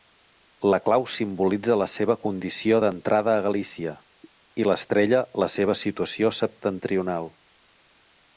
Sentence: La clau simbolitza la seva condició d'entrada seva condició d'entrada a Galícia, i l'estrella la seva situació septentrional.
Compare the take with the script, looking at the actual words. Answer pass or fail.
fail